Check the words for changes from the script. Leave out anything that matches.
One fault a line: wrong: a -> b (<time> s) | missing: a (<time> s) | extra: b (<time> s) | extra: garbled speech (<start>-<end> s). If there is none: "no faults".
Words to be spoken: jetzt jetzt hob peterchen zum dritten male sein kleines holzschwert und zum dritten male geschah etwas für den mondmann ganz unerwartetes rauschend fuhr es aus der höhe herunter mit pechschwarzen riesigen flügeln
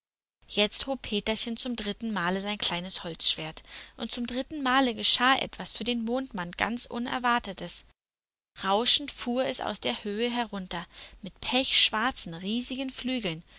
missing: jetzt (0.9 s)